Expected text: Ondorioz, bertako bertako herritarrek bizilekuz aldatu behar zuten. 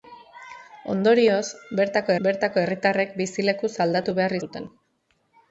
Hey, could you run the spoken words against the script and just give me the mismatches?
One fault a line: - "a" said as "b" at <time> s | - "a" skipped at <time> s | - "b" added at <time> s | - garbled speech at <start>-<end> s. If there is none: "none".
none